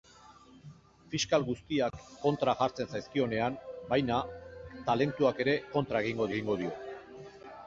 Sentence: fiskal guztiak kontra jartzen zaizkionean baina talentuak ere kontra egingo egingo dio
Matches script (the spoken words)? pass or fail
pass